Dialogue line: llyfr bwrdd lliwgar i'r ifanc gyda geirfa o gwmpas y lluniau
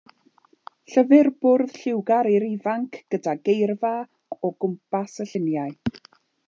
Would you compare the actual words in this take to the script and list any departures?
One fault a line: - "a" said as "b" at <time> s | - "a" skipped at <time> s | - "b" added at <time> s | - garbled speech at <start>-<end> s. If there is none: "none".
none